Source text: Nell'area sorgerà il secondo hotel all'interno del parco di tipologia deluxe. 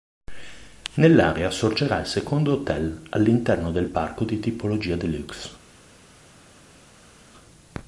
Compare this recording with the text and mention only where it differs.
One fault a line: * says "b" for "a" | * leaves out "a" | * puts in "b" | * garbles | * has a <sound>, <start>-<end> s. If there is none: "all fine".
all fine